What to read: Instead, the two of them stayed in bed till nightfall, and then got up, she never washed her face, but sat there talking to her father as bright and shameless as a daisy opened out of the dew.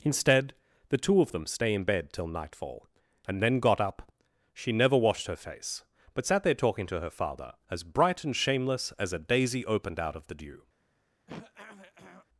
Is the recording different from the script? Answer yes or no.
yes